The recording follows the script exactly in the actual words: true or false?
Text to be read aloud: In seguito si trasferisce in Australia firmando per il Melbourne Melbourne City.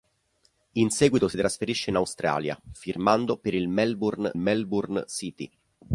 true